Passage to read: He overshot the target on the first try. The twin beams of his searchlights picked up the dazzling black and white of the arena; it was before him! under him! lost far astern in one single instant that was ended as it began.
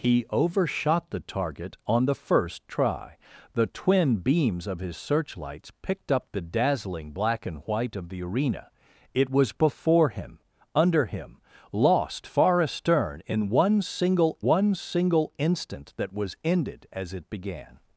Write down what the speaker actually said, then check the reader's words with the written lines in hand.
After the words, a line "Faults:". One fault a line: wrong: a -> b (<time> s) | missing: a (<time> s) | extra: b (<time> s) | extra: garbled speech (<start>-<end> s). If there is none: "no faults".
He overshot the target on the first try. The twin beams of his searchlights picked up the dazzling black and white of the arena; it was before him! under him! lost far astern in one single one single instant that was ended as it began.
Faults:
extra: one single (14.4 s)